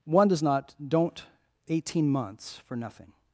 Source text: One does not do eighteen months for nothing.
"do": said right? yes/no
no